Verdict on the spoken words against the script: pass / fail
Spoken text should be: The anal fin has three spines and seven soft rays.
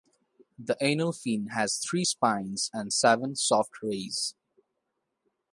pass